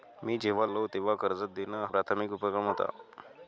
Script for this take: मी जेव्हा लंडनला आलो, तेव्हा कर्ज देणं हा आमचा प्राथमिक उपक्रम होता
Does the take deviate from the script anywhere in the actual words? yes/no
yes